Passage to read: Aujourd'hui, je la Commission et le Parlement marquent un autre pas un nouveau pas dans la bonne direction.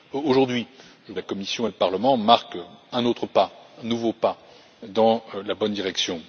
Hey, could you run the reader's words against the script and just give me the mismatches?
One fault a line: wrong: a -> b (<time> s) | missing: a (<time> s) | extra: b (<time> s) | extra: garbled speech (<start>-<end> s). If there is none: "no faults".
no faults